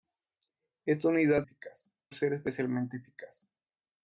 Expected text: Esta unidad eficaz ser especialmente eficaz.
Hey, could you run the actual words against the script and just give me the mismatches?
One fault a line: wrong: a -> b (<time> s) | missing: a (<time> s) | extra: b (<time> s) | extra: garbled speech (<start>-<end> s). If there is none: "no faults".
no faults